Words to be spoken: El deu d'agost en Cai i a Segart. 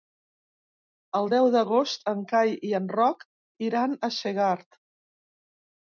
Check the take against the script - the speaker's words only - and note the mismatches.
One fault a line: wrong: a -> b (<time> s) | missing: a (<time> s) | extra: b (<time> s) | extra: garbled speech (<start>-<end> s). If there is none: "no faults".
extra: en Roc iran (2.8 s)